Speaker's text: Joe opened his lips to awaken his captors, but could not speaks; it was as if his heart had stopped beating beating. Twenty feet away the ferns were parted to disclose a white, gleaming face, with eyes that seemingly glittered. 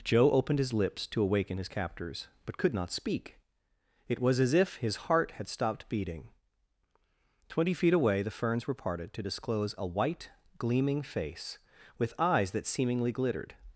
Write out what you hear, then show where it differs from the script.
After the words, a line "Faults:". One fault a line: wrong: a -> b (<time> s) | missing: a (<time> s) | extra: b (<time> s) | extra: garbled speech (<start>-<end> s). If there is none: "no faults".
Joe opened his lips to awaken his captors, but could not speak; it was as if his heart had stopped beating. Twenty feet away the ferns were parted to disclose a white, gleaming face, with eyes that seemingly glittered.
Faults:
wrong: speaks -> speak (2.9 s)
missing: beating (6.3 s)